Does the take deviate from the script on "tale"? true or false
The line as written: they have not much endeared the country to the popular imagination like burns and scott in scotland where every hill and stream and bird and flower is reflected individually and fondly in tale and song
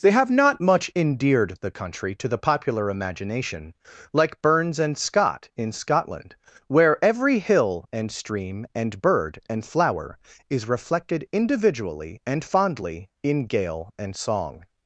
true